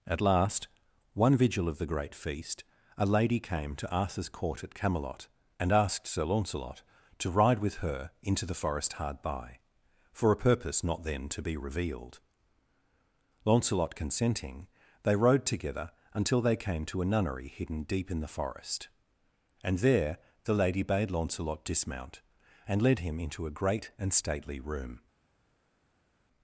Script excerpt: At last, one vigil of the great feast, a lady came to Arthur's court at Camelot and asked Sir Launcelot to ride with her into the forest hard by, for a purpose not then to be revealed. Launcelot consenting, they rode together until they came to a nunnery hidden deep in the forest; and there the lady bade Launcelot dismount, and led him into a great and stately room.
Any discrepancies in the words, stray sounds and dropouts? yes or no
no